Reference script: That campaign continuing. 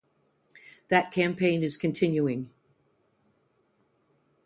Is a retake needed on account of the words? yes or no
yes